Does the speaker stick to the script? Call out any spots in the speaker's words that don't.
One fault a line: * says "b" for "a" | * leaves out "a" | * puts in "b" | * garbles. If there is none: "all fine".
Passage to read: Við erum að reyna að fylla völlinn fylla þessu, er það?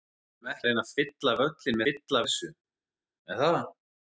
all fine